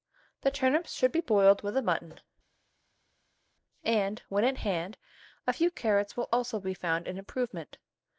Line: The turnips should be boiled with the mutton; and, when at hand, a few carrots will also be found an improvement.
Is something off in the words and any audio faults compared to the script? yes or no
no